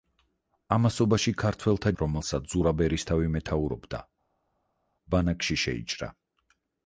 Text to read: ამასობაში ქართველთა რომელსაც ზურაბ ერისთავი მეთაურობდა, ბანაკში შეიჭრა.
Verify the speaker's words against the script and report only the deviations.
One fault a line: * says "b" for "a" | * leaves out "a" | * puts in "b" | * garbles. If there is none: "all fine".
all fine